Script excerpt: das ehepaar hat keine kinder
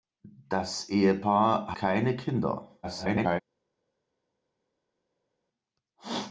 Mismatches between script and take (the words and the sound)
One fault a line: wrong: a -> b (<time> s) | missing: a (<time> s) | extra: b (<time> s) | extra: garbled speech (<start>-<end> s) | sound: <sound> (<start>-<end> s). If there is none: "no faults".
missing: hat (1.8 s)
extra: garbled speech (2.8-3.4 s)